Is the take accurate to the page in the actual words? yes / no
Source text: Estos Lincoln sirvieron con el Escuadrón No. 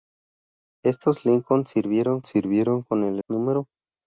no